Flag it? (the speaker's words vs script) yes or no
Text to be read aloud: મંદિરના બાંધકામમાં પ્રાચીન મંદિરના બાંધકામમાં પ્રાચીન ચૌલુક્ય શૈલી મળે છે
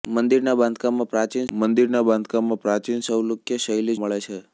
no